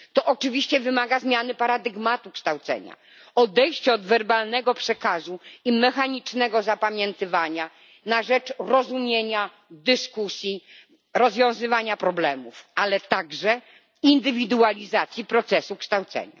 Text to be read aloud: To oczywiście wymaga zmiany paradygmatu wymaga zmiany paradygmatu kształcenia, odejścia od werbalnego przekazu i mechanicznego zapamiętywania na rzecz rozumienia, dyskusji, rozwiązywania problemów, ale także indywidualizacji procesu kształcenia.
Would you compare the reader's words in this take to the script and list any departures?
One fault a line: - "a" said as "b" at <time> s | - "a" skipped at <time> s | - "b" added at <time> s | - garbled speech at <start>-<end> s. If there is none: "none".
- "wymaga zmiany paradygmatu" skipped at 2.3 s